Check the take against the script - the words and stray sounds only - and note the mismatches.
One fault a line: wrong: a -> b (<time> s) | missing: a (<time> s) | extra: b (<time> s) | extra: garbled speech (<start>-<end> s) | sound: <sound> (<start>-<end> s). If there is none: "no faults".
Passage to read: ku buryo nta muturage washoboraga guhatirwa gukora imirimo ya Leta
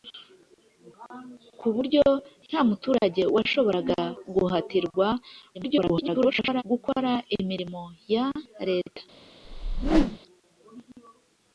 extra: garbled speech (5.5-6.6 s)
sound: whoosh (9.4-10.2 s)